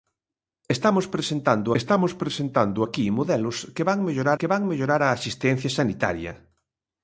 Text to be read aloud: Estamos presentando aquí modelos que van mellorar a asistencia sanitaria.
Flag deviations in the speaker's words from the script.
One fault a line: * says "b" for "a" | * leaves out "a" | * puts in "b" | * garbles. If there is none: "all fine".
* puts in "estamos presentando"
* puts in "que van mellorar"